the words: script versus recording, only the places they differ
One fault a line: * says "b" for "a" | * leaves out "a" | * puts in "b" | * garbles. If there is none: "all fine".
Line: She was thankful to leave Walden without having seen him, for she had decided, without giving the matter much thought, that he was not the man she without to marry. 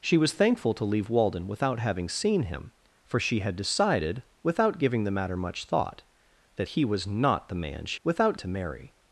all fine